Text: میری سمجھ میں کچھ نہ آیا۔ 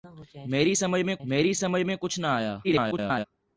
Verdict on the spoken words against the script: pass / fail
fail